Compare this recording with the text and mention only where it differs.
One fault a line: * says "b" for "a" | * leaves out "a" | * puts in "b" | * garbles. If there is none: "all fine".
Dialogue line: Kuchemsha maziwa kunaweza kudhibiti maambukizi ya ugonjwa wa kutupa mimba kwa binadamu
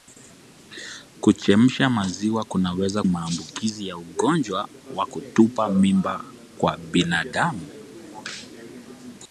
* leaves out "kudhibiti"